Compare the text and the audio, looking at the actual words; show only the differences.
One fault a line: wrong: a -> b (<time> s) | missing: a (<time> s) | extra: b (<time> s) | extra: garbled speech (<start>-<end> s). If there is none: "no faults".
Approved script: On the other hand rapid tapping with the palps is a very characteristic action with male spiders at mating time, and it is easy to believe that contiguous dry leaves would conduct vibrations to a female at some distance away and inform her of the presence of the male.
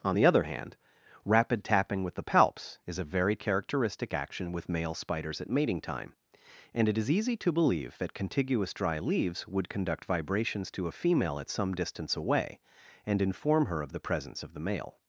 no faults